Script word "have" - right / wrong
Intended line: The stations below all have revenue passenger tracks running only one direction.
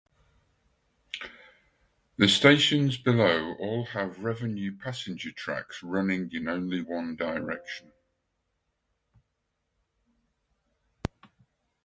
right